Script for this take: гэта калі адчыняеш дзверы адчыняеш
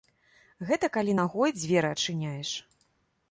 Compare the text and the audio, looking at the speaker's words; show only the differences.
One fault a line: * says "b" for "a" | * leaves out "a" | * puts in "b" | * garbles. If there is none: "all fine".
* says "нагой" for "адчыняеш"